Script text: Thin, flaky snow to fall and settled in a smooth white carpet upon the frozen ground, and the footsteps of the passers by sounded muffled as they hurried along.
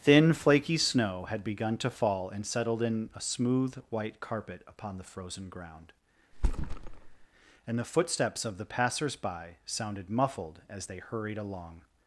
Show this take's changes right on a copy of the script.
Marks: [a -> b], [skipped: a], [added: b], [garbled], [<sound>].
Thin, flaky snow [added: had begun] to fall and settled in a smooth white carpet upon the frozen ground, [thud] and the footsteps of the passers by sounded muffled as they hurried along.